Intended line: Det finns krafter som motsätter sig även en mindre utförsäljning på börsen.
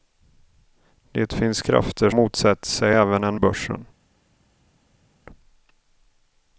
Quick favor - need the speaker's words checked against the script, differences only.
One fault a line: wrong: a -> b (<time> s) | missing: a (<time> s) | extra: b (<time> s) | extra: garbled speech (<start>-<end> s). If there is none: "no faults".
missing: som (2.1 s)
missing: mindre utförsäljning på (3.4 s)